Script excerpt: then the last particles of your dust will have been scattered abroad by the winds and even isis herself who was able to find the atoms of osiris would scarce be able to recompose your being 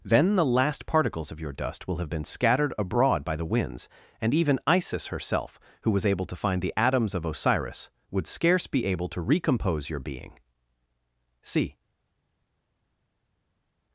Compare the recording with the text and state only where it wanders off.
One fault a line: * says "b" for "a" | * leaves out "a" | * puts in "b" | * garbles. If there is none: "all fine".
* puts in "see"